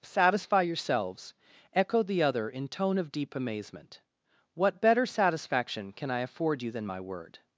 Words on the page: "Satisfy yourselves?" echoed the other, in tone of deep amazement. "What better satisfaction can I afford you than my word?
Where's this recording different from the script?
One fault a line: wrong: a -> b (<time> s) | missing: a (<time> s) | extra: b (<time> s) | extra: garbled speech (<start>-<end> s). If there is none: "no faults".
no faults